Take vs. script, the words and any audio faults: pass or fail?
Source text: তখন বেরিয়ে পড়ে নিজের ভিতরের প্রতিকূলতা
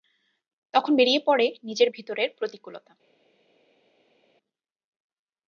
pass